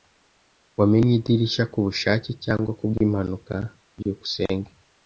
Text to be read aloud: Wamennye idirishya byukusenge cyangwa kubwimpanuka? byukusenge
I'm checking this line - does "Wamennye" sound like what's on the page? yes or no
yes